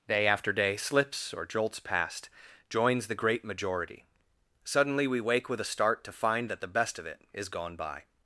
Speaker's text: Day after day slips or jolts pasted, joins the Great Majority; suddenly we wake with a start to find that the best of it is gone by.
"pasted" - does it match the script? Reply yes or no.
no